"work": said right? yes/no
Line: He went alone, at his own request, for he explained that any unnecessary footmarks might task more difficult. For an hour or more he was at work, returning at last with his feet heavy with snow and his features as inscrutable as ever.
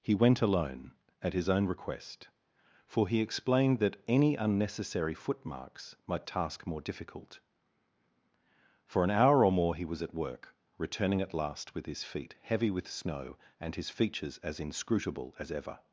yes